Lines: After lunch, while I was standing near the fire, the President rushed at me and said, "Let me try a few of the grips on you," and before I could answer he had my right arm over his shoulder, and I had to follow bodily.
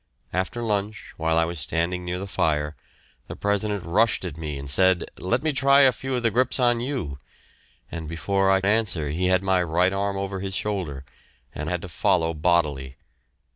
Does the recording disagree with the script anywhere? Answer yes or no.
yes